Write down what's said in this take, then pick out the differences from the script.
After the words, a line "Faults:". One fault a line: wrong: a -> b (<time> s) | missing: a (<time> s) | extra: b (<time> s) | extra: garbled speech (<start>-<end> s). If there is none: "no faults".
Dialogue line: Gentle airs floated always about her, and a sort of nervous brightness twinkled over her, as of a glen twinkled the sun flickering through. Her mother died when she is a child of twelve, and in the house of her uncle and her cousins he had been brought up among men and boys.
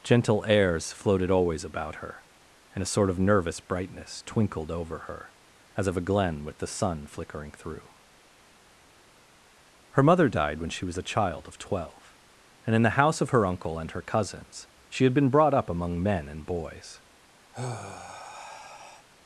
Gentle airs floated always about her, and a sort of nervous brightness twinkled over her, as of a glen with the sun flickering through. Her mother died when she was a child of twelve, and in the house of her uncle and her cousins she had been brought up among men and boys.
Faults:
wrong: twinkled -> with (6.4 s)
wrong: is -> was (10.8 s)
wrong: he -> she (14.9 s)